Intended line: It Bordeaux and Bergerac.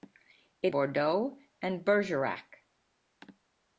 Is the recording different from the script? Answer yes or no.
no